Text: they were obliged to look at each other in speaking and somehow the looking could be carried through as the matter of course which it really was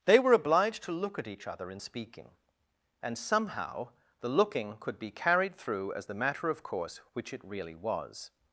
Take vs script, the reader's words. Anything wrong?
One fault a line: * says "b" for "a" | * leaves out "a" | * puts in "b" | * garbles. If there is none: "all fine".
all fine